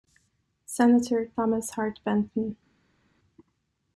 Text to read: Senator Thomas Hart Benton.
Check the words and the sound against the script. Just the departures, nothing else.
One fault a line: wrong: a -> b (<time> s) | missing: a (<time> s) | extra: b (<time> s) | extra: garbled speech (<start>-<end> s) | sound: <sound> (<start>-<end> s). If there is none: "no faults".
no faults